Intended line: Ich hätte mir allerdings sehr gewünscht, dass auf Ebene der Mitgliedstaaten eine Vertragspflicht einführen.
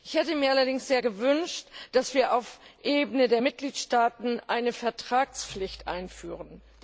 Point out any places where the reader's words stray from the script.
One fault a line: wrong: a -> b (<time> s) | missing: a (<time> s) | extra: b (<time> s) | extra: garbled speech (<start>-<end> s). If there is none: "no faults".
extra: wir (2.1 s)